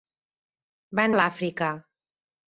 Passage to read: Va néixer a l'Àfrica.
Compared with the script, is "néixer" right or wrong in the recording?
wrong